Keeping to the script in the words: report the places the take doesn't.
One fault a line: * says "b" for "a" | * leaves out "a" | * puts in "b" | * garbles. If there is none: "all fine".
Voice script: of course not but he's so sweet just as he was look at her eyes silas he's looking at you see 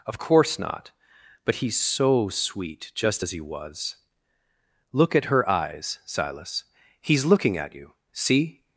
all fine